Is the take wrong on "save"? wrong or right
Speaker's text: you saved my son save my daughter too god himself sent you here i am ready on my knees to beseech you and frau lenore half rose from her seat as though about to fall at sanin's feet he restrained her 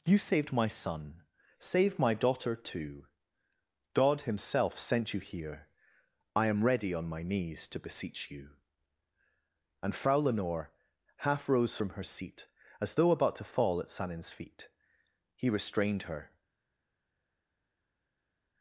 right